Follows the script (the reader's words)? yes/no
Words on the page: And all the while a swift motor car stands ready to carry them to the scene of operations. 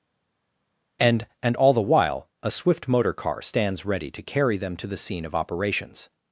no